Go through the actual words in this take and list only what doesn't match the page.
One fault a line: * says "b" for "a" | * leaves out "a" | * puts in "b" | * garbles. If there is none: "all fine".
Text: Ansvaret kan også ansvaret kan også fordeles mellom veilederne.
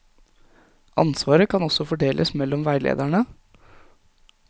* leaves out "ansvaret kan også"